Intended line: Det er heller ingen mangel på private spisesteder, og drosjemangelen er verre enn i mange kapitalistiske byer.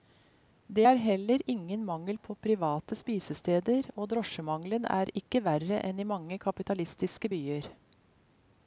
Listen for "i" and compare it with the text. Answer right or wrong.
right